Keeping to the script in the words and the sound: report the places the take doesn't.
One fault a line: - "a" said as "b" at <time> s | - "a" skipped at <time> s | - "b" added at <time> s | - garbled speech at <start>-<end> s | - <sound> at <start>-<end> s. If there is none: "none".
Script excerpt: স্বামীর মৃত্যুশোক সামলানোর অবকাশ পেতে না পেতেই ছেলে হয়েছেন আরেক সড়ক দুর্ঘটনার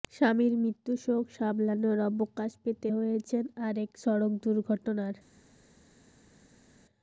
- "না পেতেই ছেলে" skipped at 2.9 s